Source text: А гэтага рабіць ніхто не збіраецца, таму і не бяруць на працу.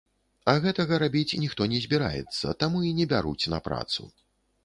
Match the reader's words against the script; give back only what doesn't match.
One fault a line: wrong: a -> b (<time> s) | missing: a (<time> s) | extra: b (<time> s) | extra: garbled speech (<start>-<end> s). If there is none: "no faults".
no faults